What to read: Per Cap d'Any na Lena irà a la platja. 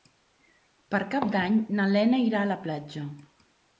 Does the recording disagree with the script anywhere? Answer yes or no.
no